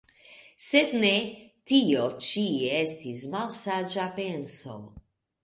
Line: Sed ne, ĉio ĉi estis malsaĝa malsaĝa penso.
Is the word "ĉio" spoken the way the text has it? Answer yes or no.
no